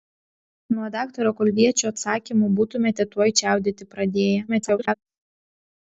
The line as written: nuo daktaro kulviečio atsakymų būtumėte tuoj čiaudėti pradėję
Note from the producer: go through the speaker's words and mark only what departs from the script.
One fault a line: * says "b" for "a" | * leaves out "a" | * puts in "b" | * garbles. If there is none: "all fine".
* garbles